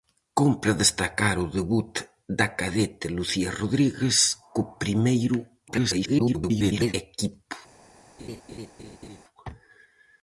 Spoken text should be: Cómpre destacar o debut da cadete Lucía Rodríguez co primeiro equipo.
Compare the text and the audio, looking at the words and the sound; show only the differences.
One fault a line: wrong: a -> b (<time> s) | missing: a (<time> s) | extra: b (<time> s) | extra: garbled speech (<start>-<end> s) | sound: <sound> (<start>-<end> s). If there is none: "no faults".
extra: garbled speech (5.7-6.9 s)
sound: laugh (8.2-9.2 s)